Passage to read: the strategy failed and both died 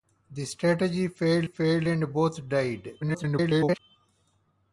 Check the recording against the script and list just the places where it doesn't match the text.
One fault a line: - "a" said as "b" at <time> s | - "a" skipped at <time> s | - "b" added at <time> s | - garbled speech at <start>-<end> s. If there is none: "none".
- "failed" added at 1.4 s
- garbled speech at 3.0-3.8 s